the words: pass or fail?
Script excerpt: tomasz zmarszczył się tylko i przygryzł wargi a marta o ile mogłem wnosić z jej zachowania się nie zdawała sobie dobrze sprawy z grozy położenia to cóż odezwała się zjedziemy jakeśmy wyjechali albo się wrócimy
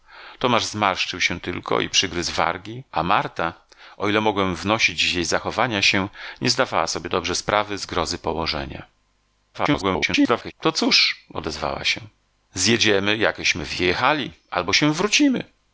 fail